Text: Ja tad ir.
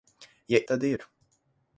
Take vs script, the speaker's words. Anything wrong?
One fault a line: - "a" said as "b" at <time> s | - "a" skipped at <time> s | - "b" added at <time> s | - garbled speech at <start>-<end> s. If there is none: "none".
none